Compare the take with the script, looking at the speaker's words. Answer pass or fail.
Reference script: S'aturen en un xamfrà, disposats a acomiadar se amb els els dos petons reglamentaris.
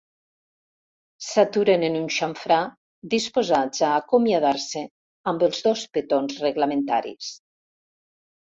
fail